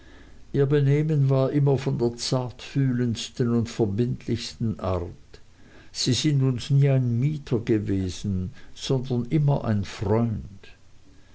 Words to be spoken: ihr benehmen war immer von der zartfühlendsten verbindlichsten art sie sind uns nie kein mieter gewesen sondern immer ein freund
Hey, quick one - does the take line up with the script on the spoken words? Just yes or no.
no